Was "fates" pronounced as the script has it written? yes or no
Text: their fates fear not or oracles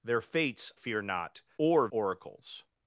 yes